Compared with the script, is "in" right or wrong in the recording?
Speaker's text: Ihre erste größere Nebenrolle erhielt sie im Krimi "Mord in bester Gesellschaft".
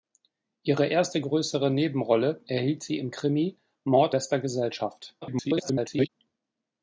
wrong